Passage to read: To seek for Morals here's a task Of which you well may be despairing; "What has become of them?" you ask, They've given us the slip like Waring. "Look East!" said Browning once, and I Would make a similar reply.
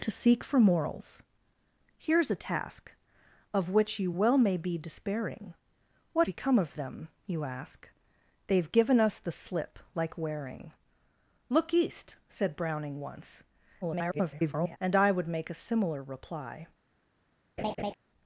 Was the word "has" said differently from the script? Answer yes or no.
yes